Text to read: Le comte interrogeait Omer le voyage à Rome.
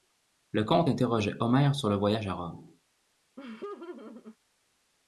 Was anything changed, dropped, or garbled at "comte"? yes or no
no